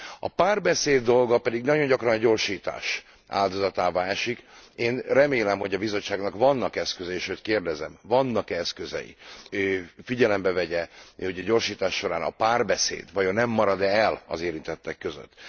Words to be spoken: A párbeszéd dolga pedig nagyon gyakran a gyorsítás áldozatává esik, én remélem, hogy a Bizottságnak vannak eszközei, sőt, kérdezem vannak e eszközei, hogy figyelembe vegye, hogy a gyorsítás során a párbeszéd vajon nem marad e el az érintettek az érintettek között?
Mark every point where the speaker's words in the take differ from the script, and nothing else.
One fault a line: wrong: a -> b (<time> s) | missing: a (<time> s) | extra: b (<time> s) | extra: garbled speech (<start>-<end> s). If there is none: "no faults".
missing: az érintettek (15.0 s)